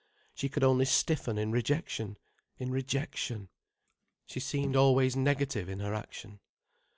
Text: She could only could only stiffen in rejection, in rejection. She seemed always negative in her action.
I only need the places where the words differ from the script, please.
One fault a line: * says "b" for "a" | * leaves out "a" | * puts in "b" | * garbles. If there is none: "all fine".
* leaves out "could only"